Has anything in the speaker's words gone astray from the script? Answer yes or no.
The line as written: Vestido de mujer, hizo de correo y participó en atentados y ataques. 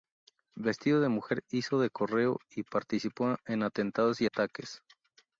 no